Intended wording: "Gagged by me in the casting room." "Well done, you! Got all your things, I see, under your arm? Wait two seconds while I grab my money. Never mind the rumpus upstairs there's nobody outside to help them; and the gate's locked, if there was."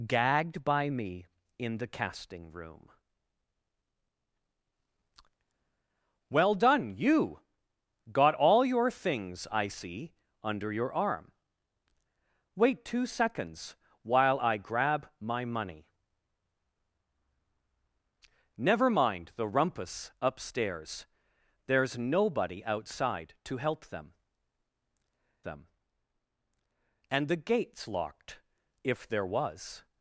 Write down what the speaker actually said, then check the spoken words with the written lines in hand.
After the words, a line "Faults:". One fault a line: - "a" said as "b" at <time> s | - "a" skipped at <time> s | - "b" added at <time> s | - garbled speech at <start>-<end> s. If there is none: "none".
"Gagged by me in the casting room." "Well done, you! Got all your things, I see, under your arm? Wait two seconds while I grab my money. Never mind the rumpus upstairs there's nobody outside to help them them; and the gate's locked, if there was."
Faults:
- "them" added at 25.4 s